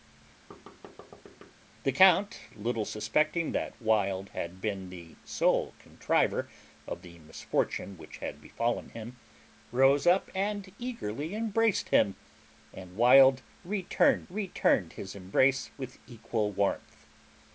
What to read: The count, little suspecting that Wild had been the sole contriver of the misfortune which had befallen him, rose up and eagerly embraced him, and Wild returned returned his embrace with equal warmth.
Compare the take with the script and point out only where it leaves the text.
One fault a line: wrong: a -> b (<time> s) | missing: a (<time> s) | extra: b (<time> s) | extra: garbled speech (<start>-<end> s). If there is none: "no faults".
no faults